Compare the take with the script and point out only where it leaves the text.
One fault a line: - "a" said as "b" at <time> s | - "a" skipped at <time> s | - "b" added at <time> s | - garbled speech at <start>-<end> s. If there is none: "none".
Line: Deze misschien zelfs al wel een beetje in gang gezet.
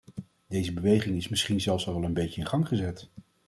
- "beweging is" added at 0.7 s